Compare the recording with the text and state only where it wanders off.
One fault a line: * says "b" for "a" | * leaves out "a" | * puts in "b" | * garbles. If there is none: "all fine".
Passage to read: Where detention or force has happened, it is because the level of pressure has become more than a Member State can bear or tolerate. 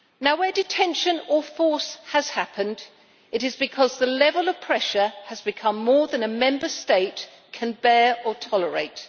all fine